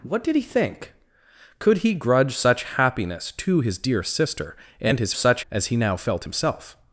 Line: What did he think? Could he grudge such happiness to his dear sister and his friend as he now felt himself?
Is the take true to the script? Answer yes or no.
no